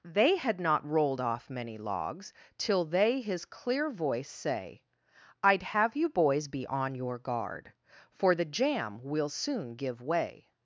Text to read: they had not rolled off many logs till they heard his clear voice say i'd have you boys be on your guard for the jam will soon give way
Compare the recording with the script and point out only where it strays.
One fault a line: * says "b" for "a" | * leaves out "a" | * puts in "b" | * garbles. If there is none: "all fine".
* leaves out "heard"